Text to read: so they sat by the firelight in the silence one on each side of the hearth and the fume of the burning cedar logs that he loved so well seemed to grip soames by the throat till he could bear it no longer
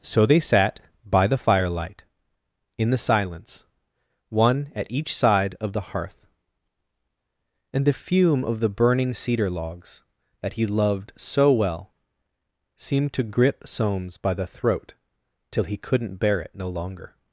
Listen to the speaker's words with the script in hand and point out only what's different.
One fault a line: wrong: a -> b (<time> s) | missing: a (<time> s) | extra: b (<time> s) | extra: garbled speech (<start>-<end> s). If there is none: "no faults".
wrong: on -> at (4.7 s)
wrong: could -> couldn't (15.8 s)